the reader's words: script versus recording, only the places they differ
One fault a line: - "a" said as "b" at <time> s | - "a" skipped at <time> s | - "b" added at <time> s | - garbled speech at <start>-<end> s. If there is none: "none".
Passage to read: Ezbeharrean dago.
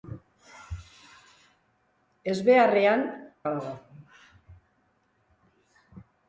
none